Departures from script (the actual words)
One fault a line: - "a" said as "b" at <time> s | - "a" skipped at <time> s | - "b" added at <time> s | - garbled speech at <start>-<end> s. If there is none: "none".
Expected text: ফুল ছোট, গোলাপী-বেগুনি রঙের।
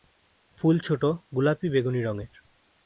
none